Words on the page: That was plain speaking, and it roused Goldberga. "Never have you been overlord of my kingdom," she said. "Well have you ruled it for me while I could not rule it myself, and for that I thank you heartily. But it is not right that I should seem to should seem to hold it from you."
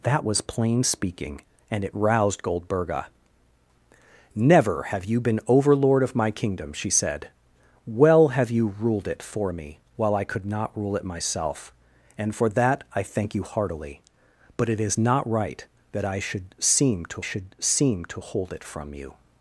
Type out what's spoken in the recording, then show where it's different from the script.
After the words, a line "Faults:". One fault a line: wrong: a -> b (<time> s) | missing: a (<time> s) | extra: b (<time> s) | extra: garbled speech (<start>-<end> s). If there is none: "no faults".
That was plain speaking, and it roused Goldberga. "Never have you been overlord of my kingdom," she said. "Well have you ruled it for me while I could not rule it myself, and for that I thank you heartily. But it is not right that I should seem to should seem to hold it from you."
Faults:
no faults